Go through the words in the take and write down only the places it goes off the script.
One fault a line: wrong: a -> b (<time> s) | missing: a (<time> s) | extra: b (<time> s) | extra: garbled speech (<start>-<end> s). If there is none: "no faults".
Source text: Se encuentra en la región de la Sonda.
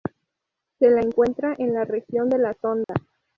extra: la (0.9 s)